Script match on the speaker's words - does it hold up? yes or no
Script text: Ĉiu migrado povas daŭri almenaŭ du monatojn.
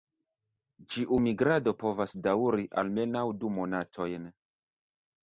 yes